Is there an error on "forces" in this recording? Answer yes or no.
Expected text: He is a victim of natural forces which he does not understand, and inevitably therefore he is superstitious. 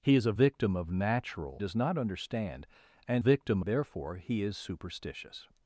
yes